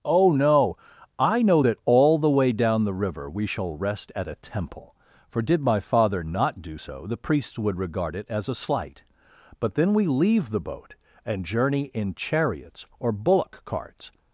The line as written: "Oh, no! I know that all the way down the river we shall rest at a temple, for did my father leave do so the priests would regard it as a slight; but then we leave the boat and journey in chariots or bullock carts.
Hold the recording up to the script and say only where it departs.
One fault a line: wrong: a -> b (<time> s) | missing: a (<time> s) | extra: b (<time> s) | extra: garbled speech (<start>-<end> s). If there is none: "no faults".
wrong: leave -> not (6.2 s)